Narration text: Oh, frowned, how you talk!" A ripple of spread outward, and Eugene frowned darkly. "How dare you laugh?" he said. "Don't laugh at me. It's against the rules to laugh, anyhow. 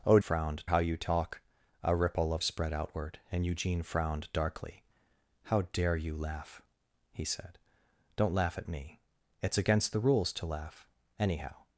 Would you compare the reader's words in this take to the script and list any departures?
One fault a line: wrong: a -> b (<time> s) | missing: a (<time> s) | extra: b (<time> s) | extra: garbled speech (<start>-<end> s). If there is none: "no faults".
no faults